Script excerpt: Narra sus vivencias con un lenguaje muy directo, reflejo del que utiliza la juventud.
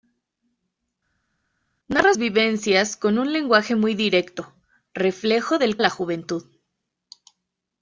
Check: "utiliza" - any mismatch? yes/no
yes